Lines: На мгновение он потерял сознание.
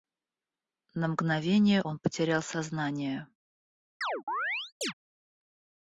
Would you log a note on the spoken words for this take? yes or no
no